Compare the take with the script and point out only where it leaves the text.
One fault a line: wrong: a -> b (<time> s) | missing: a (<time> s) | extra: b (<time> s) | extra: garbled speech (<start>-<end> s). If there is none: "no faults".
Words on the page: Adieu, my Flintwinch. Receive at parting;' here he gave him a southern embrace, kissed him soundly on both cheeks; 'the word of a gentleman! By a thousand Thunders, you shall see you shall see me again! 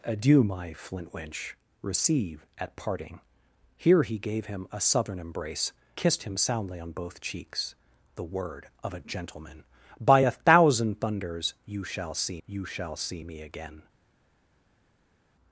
no faults